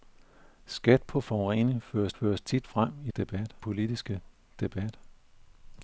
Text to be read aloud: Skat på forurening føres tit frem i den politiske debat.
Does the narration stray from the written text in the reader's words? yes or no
yes